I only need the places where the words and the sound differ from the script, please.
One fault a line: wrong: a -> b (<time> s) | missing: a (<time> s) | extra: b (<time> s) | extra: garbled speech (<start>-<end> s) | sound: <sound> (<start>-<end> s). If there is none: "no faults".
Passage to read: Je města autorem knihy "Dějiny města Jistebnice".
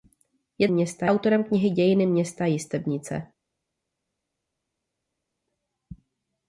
no faults